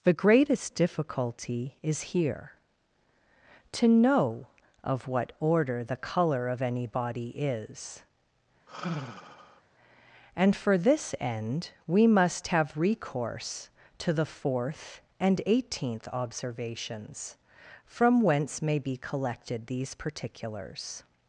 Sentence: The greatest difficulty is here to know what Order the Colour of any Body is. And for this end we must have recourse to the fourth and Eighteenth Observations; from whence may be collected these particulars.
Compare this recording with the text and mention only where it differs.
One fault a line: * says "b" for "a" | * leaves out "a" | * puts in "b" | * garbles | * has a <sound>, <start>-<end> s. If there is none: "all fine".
* puts in "of"
* has a sigh, 8.7-9.6 s